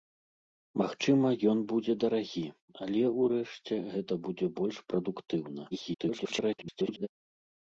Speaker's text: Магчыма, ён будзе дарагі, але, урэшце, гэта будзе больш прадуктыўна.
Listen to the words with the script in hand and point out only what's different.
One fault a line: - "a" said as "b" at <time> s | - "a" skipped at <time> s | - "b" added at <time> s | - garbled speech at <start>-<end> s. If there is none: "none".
- garbled speech at 5.7-7.1 s